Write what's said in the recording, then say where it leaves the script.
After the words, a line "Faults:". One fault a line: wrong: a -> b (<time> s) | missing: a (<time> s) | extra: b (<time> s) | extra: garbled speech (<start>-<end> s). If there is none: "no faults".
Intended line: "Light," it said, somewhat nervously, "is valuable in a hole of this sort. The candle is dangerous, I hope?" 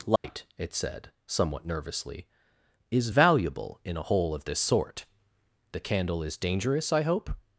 "Light," it said, somewhat nervously, "is valuable in a hole of this sort. The candle is dangerous, I hope?"
Faults:
no faults